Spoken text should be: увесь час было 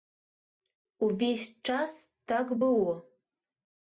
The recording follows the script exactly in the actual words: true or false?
false